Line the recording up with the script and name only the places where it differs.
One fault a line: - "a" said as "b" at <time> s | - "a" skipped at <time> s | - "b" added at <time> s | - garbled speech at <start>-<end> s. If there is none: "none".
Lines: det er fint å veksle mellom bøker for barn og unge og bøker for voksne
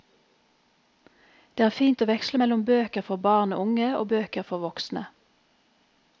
none